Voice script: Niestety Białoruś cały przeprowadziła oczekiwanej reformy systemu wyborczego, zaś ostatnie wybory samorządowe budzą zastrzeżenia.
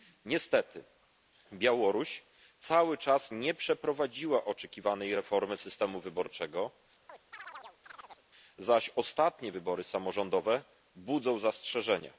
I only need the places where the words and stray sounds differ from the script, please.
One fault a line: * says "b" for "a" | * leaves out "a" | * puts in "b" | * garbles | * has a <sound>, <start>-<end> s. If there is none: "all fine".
* puts in "czas nie"
* has a chirp, 7.1-8.2 s